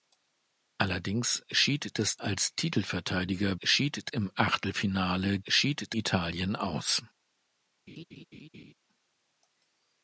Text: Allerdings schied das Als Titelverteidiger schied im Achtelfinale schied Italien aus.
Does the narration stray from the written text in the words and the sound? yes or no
yes